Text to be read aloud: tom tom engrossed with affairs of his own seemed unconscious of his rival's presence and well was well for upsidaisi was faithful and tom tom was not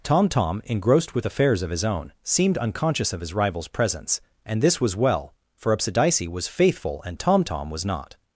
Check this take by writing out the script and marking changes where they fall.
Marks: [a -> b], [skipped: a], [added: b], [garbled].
tom tom engrossed with affairs of his own seemed unconscious of his rival's presence and [well -> this] was well for upsidaisi was faithful and tom tom was not